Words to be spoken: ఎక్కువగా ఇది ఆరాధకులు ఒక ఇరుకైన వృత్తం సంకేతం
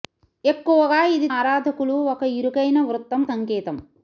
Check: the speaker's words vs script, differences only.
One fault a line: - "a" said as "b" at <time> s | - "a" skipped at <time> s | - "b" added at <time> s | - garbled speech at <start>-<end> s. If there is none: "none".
none